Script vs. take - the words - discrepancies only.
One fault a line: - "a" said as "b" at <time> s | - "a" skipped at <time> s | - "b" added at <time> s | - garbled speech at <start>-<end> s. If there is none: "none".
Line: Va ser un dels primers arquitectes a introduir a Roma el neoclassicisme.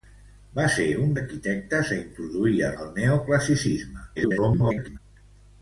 - "dels primers" skipped at 1.1 s
- "Roma" skipped at 2.7 s
- garbled speech at 4.2-5.0 s